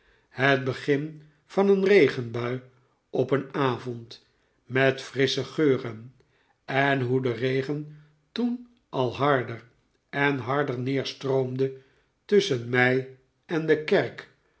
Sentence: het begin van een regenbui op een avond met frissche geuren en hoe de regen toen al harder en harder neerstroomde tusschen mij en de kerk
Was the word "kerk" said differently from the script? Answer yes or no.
no